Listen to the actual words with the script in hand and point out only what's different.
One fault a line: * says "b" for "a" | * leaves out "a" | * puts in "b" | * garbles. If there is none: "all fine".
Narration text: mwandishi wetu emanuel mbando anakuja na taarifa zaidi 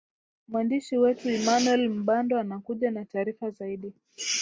all fine